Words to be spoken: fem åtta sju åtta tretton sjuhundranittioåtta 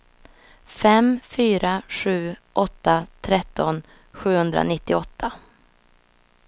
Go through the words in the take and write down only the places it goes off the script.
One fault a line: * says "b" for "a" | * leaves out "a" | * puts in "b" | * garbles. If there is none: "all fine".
* says "fyra" for "åtta"